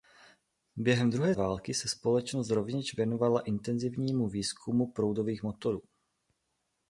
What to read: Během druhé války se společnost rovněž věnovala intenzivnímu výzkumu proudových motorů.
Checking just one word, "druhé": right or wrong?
right